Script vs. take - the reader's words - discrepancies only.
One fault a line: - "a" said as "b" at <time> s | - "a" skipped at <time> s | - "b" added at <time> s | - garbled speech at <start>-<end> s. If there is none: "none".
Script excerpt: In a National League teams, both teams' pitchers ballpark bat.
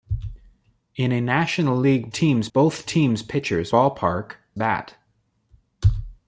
none